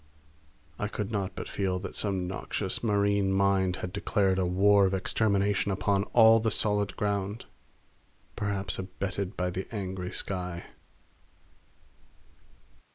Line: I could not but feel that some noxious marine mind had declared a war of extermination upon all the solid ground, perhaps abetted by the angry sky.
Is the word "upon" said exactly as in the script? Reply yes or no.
yes